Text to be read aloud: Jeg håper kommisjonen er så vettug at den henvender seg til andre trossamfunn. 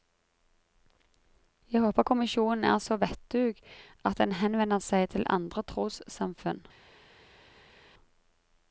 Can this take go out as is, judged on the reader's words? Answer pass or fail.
pass